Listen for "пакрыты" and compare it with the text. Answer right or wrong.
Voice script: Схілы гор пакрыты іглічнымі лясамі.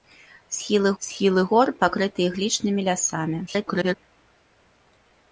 right